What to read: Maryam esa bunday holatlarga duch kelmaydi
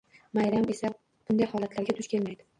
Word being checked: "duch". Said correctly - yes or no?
yes